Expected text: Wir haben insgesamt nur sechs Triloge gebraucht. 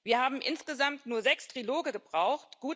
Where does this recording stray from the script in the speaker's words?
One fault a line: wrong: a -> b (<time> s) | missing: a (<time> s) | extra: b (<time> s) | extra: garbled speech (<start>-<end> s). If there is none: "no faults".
no faults